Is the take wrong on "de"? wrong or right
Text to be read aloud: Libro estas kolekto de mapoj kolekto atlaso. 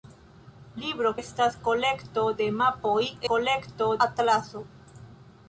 right